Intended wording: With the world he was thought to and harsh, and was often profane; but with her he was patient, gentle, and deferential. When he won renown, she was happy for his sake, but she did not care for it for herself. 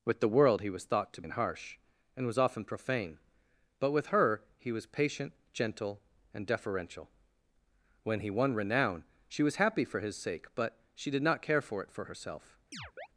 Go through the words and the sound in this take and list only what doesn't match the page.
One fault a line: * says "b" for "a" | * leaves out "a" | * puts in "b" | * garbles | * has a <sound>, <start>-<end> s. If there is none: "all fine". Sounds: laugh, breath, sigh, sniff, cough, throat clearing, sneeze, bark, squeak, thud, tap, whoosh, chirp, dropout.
* has a chirp, 12.7-13.1 s